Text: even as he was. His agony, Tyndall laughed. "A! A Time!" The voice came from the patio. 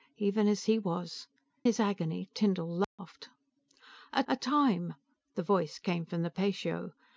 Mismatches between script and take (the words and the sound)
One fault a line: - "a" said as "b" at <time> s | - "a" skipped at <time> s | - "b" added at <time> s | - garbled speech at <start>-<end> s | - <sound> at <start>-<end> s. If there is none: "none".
- dropout at 2.8-3.0 s